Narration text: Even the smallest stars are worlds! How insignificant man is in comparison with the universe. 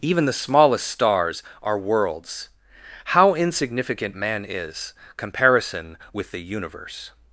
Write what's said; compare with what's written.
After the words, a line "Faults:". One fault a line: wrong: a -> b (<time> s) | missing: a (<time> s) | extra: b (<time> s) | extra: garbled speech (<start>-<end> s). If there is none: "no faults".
Even the smallest stars are worlds! How insignificant man is comparison with the universe.
Faults:
missing: in (4.9 s)